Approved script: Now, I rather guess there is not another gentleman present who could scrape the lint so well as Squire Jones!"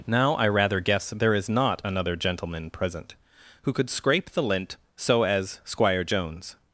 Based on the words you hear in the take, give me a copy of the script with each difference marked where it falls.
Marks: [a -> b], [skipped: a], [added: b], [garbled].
Now, I rather guess there is not another gentleman present who could scrape the lint so [skipped: well] as Squire Jones!"